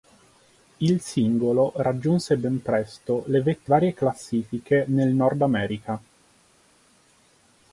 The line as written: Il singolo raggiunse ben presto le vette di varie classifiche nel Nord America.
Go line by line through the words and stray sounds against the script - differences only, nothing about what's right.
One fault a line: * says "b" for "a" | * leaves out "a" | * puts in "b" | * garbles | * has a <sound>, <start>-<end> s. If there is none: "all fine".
* leaves out "di"